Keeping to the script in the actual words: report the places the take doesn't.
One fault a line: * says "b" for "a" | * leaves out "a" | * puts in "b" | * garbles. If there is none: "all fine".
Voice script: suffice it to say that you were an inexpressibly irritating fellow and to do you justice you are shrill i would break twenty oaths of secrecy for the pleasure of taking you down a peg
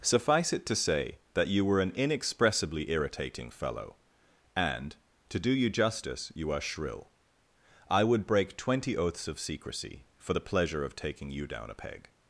all fine